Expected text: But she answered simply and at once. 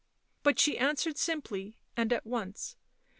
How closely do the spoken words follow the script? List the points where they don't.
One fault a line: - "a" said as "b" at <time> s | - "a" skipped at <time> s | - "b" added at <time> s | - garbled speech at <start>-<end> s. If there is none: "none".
none